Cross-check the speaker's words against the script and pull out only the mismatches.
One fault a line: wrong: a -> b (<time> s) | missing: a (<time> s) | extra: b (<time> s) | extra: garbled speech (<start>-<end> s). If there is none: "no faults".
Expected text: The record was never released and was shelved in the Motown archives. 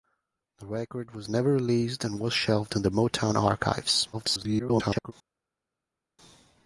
extra: garbled speech (4.1-5.1 s)